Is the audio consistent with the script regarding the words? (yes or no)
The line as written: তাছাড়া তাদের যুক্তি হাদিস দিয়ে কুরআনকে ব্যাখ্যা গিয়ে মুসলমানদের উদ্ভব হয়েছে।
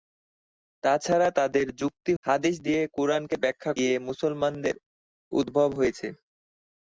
yes